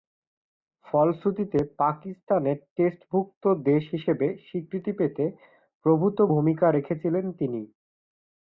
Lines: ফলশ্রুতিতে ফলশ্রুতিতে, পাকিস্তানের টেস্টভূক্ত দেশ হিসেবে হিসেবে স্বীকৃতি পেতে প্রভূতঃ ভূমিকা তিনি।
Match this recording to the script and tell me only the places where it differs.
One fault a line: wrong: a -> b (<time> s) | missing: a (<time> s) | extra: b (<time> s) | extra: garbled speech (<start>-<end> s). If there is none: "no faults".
missing: ফলশ্রুতিতে (1.6 s)
missing: হিসেবে (4.3 s)
extra: রেখেছিলেন (6.7 s)